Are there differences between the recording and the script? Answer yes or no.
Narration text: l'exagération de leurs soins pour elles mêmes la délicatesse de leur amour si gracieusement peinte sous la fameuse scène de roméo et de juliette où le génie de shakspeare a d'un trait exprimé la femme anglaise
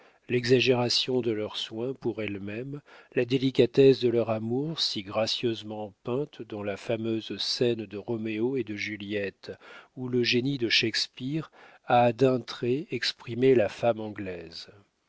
yes